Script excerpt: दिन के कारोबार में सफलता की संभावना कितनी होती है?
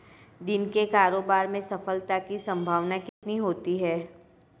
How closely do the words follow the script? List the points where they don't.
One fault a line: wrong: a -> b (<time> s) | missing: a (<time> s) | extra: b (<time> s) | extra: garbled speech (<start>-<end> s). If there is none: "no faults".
no faults